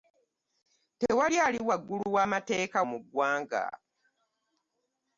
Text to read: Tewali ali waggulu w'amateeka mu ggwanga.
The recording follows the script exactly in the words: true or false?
true